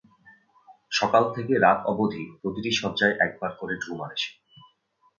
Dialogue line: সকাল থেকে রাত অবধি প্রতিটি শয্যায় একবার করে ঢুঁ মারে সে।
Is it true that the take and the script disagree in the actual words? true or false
false